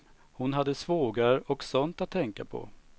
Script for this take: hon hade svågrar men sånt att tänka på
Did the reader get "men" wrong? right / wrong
wrong